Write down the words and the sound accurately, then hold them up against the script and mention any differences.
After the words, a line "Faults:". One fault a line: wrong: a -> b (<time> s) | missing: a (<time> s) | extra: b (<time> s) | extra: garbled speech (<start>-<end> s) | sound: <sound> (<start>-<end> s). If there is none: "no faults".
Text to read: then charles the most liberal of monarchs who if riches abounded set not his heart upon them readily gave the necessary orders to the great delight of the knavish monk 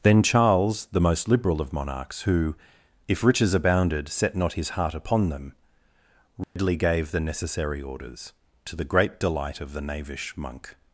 then charles the most liberal of monarchs who if riches abounded set not his heart upon them readily gave the necessary orders to the great delight of the knavish monk
Faults:
sound: dropout (6.4-6.6 s)